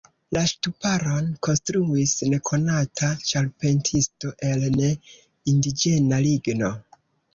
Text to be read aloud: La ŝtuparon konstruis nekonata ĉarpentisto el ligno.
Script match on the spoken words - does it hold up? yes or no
no